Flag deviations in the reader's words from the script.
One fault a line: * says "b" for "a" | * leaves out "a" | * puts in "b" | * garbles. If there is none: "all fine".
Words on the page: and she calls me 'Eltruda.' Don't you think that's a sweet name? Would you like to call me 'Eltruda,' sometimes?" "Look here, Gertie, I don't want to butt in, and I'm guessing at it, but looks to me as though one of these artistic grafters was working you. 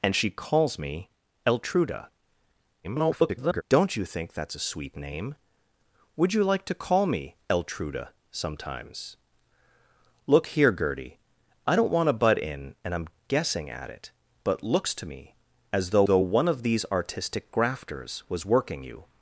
* garbles
* puts in "though"